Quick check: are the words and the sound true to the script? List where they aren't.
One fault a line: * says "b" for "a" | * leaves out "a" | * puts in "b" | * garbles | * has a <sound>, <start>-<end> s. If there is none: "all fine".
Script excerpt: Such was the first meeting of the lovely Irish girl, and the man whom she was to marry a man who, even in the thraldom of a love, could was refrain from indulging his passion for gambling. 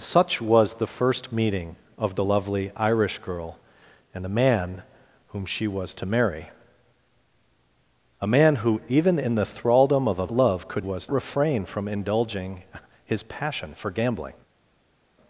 all fine